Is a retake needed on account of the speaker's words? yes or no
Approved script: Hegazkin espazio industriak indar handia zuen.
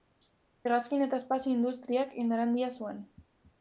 yes